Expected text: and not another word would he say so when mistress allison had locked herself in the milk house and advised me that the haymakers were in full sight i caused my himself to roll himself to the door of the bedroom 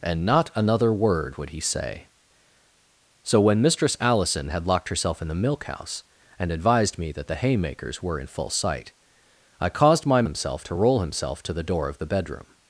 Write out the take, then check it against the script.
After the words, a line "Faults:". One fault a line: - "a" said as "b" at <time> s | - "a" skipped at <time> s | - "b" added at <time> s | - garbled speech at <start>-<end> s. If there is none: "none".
and not another word would he say so when mistress allison had locked herself in the milk house and advised me that the haymakers were in full sight i caused my himself to roll himself to the door of the bedroom
Faults:
none